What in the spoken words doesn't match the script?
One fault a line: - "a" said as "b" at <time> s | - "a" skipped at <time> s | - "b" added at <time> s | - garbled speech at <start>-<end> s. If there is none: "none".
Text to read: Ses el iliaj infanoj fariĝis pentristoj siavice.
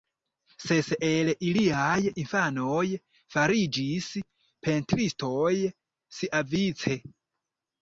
none